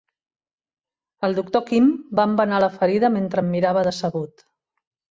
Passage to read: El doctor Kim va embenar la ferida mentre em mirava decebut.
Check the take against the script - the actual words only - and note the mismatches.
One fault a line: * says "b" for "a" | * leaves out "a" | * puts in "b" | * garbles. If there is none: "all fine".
all fine